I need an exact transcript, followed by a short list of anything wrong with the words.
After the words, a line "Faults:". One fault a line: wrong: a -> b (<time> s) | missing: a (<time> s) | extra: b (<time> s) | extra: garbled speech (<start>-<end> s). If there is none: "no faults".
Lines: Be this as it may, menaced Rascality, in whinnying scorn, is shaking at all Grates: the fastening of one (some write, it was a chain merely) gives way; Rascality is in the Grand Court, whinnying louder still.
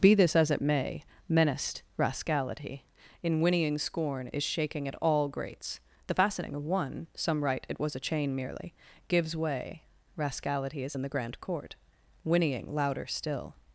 Be this as it may, menaced Rascality, in whinnying scorn, is shaking at all Grates: the fastening of one (some write, it was a chain merely) gives way; Rascality is in the Grand Court, whinnying louder still.
Faults:
no faults